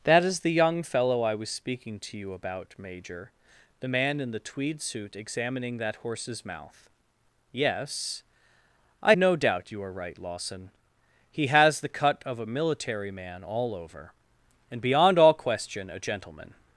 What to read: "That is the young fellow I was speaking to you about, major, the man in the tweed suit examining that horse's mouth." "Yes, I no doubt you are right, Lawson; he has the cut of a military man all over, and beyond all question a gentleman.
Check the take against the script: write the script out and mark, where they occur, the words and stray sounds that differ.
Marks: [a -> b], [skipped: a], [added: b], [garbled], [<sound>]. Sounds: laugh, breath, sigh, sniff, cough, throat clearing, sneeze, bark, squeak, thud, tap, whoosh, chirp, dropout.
"That is the young fellow I was speaking to you about, major, the man in the tweed suit examining that horse's mouth." "Yes, I no doubt you are right, Lawson; he has the cut of a military man all over, and beyond all question a gentleman.